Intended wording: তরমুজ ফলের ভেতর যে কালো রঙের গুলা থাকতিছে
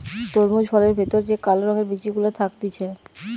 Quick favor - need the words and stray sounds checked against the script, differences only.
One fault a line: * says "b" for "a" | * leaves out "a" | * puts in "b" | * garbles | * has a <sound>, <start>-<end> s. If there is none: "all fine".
* puts in "বিচি"